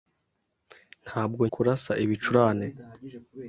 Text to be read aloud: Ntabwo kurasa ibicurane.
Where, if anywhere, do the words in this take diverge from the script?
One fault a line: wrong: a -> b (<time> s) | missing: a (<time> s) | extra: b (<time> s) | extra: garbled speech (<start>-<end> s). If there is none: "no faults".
no faults